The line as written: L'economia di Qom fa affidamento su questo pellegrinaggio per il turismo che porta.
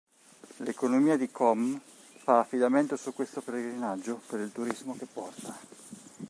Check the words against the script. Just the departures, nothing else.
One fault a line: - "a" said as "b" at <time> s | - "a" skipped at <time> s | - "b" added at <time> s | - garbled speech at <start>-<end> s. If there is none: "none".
none